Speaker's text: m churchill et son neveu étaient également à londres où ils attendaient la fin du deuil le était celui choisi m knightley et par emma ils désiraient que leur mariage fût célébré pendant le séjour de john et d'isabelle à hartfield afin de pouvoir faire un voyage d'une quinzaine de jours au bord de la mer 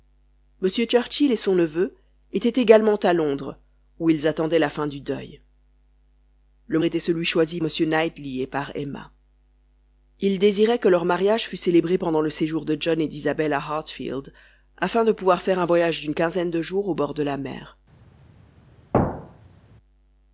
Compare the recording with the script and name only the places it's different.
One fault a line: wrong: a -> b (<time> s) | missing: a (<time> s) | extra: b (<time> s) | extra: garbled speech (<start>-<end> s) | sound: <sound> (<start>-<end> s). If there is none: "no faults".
sound: thud (18.9-19.6 s)